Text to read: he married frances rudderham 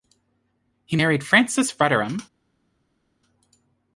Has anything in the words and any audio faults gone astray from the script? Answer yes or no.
no